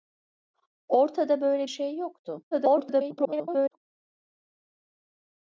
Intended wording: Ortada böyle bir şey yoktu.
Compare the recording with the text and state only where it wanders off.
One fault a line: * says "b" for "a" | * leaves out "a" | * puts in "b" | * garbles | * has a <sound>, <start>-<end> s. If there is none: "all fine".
* leaves out "bir"
* garbles